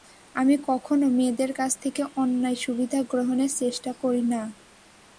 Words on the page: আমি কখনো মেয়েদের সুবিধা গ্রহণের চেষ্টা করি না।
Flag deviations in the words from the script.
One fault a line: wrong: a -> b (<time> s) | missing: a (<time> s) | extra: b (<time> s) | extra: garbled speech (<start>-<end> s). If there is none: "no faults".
extra: কাছ থেকে অন্যায় (1.5 s)